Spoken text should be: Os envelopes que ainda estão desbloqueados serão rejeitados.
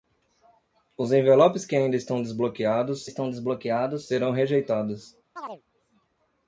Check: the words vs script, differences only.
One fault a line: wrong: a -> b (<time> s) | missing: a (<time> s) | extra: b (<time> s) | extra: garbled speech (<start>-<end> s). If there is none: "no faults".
extra: estão desbloqueados (3.0 s)